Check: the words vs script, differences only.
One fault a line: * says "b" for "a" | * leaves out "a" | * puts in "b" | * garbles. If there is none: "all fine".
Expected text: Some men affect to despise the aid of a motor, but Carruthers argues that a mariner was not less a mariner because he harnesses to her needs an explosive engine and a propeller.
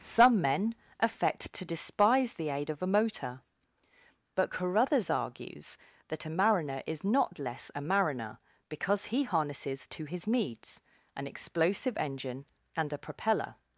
* says "is" for "was"
* says "his" for "her"